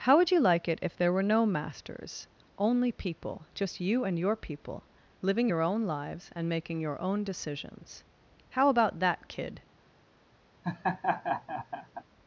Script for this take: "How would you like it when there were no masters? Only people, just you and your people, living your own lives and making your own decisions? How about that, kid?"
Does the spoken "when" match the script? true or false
false